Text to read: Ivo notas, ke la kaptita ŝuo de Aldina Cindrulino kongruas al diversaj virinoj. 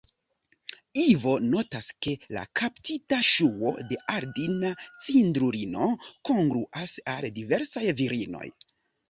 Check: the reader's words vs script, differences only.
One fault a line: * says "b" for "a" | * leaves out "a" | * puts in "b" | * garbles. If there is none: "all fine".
all fine